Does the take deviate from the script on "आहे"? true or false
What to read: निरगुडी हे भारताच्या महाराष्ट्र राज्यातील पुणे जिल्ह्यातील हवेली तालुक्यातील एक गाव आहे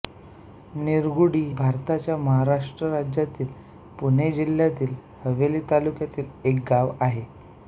false